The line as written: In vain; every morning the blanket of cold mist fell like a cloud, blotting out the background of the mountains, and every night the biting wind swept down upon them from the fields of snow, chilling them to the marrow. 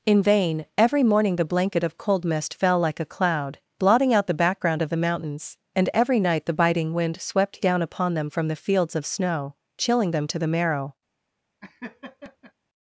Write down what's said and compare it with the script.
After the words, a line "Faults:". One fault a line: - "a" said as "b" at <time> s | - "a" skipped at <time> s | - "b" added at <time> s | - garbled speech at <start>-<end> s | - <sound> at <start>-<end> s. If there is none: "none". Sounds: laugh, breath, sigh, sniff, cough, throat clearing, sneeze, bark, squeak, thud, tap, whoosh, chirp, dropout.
In vain; every morning the blanket of cold mist fell like a cloud, blotting out the background of the mountains, and every night the biting wind swept down upon them from the fields of snow, chilling them to the marrow.
Faults:
- laugh at 11.6-12.5 s